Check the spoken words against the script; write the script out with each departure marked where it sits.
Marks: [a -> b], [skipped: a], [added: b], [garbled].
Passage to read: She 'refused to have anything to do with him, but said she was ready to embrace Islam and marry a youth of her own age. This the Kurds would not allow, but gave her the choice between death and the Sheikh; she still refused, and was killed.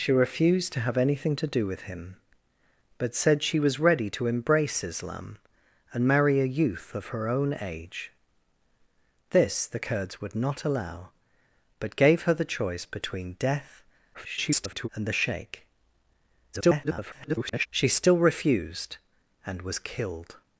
She 'refused to have anything to do with him, but said she was ready to embrace Islam and marry a youth of her own age. This the Kurds would not allow, but gave her the choice between death [garbled] and the Sheikh; [garbled] she still refused, and was killed.